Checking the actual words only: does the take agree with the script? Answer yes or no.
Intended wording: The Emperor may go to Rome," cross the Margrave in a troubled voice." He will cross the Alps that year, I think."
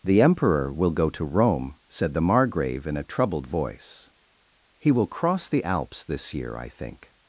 no